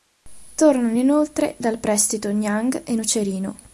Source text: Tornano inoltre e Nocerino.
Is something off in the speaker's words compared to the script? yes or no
yes